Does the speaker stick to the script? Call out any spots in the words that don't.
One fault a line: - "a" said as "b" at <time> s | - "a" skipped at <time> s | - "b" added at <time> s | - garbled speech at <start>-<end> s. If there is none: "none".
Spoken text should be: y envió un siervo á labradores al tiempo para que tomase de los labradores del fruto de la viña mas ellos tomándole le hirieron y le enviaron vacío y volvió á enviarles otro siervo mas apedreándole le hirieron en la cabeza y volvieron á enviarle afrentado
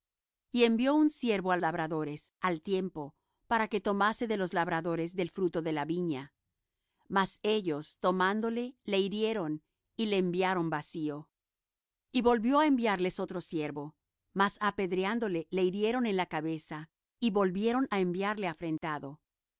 none